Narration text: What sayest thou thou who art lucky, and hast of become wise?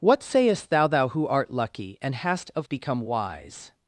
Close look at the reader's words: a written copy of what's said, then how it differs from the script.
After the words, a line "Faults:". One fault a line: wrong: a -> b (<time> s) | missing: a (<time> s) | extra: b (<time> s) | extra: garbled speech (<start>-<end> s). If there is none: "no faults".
What sayest thou thou who art lucky, and hast of become wise?
Faults:
no faults